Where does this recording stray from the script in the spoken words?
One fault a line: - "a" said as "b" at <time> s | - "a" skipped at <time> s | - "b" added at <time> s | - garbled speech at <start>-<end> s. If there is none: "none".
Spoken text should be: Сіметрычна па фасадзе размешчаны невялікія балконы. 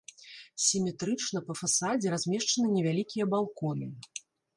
none